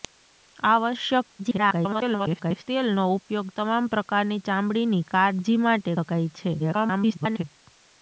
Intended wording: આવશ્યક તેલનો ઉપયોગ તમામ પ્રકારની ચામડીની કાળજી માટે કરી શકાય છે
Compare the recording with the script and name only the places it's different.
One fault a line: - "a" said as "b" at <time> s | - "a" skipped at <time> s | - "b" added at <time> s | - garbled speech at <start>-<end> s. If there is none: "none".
- garbled speech at 1.4-2.6 s
- "કરી" skipped at 6.0 s
- garbled speech at 6.6-7.4 s